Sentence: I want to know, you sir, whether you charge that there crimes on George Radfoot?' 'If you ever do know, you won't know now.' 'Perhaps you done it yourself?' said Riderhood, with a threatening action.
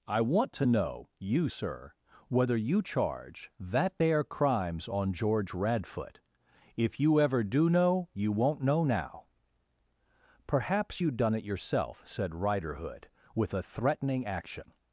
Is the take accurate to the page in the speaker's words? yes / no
yes